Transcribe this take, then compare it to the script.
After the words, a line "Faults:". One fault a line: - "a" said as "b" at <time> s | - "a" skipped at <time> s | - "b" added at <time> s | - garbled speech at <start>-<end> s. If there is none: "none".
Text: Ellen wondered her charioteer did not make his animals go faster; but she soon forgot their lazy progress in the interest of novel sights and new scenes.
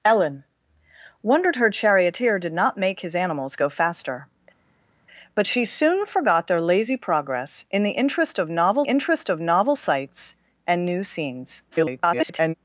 Ellen wondered her charioteer did not make his animals go faster; but she soon forgot their lazy progress in the interest of novel interest of novel sights and new scenes. [garbled]
Faults:
- "interest of novel" added at 8.8 s
- garbled speech at 11.7-12.5 s